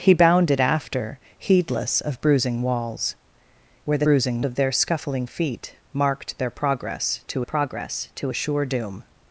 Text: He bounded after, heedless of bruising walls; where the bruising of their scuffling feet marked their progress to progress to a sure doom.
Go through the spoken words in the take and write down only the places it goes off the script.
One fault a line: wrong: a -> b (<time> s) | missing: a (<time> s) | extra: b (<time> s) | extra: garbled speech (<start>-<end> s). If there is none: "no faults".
no faults